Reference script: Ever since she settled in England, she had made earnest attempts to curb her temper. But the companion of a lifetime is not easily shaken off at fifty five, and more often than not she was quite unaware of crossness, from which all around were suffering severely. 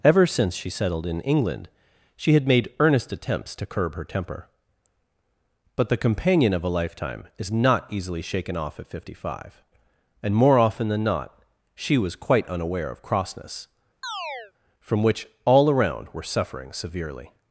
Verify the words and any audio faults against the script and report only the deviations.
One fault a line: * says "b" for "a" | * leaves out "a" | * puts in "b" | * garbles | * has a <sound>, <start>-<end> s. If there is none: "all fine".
* has a chirp, 14.0-14.5 s